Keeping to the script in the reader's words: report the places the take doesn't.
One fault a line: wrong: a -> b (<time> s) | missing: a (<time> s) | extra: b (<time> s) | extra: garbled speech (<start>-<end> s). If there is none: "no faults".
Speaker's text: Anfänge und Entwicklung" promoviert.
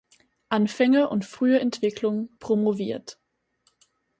extra: frühe (1.2 s)